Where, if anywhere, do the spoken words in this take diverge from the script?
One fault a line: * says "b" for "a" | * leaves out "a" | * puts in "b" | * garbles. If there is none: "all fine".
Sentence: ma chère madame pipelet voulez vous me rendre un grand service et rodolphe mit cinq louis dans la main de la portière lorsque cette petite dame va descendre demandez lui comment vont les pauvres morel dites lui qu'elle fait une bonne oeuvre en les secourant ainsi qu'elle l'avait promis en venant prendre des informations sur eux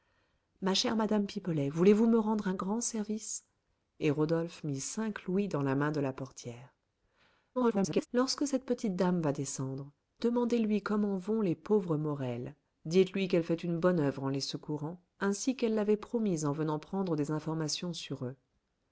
* garbles